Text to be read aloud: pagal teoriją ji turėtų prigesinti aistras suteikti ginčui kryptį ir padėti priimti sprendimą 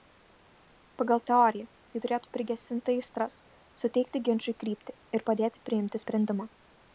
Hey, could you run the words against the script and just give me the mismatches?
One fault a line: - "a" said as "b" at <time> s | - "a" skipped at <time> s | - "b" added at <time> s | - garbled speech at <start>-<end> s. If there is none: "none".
none